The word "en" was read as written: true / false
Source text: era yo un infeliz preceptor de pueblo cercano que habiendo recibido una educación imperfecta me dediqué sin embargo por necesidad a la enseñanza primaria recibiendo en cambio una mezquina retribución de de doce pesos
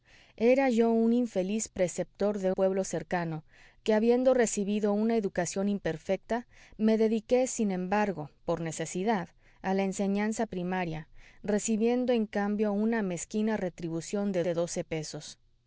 true